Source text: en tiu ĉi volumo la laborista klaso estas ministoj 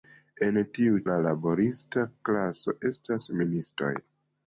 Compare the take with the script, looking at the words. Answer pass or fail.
fail